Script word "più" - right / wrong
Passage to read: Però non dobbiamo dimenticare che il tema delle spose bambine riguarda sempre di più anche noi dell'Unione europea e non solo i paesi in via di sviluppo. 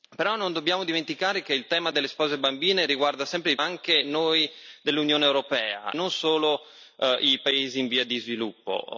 wrong